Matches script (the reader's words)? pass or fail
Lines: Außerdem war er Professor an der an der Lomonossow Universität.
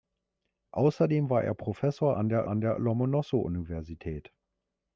pass